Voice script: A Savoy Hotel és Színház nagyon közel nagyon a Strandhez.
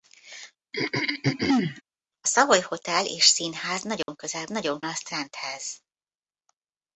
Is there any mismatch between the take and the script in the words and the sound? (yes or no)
yes